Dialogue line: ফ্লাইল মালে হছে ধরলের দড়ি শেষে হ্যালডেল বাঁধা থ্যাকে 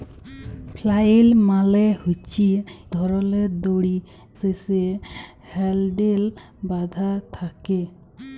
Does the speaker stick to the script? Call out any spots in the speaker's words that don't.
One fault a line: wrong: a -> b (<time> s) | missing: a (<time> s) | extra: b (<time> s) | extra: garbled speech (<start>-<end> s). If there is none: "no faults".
no faults